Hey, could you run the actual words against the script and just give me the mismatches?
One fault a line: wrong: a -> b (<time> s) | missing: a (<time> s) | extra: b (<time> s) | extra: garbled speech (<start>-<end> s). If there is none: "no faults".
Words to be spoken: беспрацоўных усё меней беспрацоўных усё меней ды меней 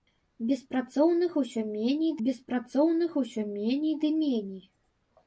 no faults